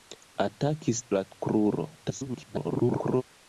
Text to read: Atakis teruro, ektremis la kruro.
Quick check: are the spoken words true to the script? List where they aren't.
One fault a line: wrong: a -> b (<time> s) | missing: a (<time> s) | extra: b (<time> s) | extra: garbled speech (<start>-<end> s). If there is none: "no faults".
missing: teruro ektremis (1.0 s)
extra: garbled speech (2.0-3.2 s)